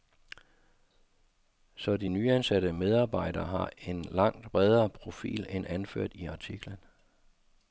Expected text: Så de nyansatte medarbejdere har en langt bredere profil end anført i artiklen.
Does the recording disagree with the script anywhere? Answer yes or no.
no